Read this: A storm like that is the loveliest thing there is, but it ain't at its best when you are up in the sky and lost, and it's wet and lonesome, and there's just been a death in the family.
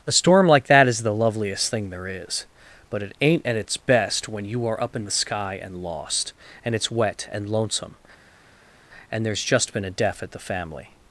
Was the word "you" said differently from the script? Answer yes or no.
no